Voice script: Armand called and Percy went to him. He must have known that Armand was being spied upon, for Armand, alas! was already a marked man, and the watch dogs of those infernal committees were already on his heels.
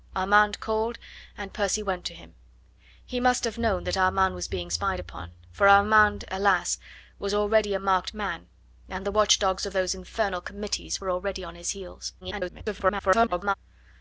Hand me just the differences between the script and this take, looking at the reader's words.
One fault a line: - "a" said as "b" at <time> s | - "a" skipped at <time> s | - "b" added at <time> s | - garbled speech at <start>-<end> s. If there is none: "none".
- garbled speech at 12.2-13.5 s